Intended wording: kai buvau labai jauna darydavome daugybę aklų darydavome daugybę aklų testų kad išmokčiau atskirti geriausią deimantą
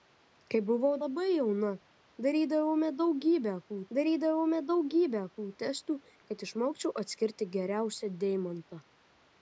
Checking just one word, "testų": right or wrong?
right